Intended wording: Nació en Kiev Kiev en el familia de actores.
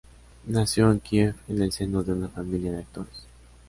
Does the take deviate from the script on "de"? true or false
false